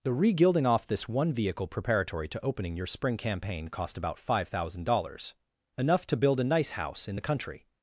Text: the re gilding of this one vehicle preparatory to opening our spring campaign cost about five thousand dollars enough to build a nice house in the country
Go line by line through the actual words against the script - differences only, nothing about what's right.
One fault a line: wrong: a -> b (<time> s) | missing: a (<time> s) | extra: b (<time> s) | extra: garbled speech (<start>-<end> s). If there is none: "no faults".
wrong: of -> off (0.7 s)
wrong: our -> your (2.8 s)